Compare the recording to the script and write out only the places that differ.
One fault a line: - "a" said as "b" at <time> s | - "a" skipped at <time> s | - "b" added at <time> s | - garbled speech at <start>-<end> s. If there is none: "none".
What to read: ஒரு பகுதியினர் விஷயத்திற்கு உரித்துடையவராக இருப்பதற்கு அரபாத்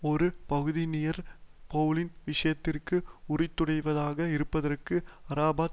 - "பெளலின்" added at 1.7 s